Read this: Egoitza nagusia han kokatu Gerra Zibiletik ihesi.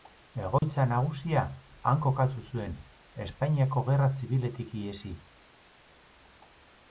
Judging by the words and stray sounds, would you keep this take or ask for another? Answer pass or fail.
fail